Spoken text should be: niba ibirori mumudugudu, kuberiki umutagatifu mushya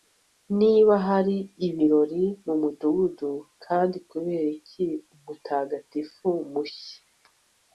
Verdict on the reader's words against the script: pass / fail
fail